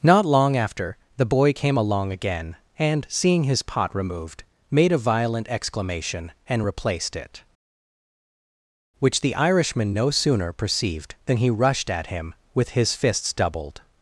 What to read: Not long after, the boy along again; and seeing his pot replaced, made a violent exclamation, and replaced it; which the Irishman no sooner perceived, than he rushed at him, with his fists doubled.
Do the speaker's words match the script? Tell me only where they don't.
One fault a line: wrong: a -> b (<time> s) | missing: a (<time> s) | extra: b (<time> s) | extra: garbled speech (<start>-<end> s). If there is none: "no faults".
extra: came (1.5 s)
wrong: replaced -> removed (3.9 s)